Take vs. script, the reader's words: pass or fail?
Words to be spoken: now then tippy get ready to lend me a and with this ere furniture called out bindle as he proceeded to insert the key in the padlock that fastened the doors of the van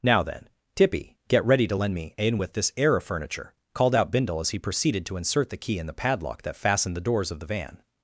fail